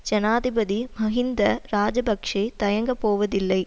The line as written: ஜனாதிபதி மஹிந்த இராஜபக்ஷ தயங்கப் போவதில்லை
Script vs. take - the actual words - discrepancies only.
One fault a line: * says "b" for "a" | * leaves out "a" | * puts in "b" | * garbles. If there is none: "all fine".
all fine